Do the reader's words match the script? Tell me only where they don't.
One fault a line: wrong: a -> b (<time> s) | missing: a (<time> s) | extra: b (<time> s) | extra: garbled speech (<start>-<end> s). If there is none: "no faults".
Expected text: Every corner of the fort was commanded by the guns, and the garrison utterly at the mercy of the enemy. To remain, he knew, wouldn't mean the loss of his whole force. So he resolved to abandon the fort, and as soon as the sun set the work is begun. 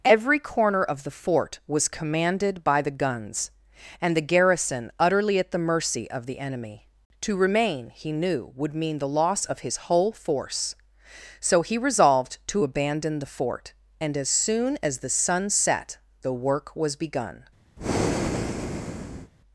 wrong: wouldn't -> would (8.6 s)
wrong: is -> was (16.8 s)